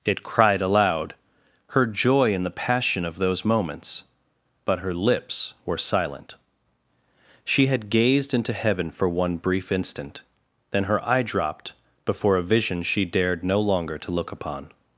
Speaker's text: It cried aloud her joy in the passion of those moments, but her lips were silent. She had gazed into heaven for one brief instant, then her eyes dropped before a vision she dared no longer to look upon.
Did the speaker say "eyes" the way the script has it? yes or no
no